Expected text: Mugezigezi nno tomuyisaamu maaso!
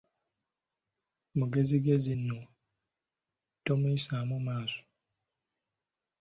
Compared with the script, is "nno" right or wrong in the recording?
right